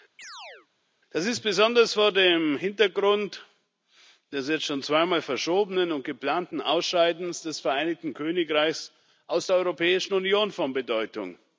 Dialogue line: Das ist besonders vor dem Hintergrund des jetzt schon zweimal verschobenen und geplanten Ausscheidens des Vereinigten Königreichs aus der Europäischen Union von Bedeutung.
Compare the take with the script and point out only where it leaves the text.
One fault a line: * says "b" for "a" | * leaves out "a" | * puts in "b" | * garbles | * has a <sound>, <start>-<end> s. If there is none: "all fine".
* has a chirp, 0.2-0.7 s